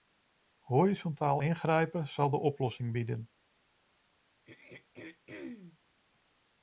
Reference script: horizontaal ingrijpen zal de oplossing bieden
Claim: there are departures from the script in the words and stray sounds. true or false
true